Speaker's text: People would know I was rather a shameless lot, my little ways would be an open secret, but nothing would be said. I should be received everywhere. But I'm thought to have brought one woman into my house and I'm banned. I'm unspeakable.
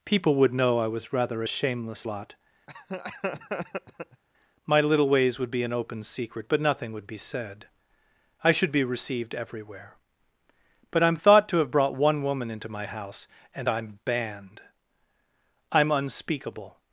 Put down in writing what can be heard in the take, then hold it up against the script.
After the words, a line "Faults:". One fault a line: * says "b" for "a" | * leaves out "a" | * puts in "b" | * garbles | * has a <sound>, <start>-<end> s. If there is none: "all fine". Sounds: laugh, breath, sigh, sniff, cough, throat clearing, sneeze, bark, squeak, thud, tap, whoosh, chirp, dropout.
People would know I was rather a shameless lot, my little ways would be an open secret, but nothing would be said. I should be received everywhere. But I'm thought to have brought one woman into my house and I'm banned. I'm unspeakable.
Faults:
* has a laugh, 2.7-4.2 s